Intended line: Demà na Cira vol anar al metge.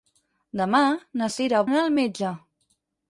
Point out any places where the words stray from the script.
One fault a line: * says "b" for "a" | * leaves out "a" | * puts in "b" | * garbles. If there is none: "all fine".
* leaves out "vol"